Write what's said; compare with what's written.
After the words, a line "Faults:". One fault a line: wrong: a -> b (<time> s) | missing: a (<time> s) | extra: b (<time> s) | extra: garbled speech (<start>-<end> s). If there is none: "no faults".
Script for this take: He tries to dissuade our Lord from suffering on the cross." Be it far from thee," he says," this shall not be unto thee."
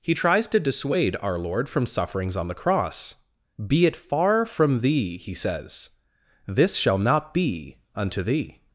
He tries to dissuade our Lord from sufferings on the cross." Be it far from thee," he says," this shall not be unto thee."
Faults:
wrong: suffering -> sufferings (1.9 s)